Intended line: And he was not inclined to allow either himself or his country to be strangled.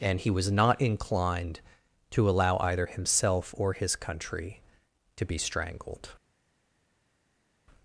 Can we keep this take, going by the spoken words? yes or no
yes